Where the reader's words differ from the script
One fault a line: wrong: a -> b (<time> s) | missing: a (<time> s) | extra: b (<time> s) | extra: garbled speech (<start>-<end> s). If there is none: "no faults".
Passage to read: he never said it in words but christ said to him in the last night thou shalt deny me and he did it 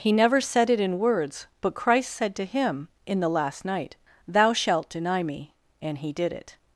no faults